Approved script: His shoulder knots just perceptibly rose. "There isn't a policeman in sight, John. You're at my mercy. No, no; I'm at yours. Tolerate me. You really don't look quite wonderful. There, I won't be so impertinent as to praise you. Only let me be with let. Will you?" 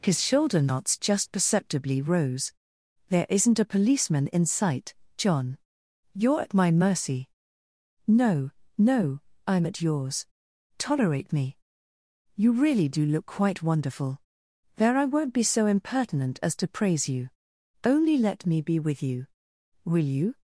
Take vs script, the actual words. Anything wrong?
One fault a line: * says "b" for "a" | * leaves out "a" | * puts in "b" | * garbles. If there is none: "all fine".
* says "do" for "don't"
* says "you" for "let"